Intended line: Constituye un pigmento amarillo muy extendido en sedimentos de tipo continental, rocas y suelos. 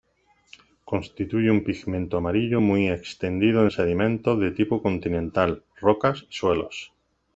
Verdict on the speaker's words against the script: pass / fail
pass